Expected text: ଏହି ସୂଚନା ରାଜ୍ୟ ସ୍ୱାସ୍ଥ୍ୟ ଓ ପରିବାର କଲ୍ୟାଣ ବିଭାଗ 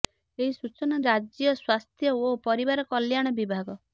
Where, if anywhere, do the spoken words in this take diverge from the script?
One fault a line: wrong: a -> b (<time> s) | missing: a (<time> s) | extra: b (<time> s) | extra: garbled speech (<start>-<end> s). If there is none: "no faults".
no faults